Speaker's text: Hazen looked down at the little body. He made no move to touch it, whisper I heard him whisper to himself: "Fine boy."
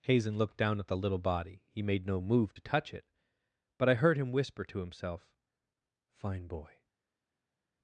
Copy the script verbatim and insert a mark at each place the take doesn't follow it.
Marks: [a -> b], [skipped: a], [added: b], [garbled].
Hazen looked down at the little body. He made no move to touch it, [whisper -> but] I heard him whisper to himself: "Fine boy."